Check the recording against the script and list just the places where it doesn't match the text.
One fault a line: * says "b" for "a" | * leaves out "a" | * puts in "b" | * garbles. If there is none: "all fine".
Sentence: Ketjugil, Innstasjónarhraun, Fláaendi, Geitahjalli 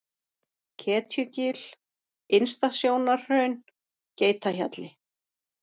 * leaves out "Fláaendi"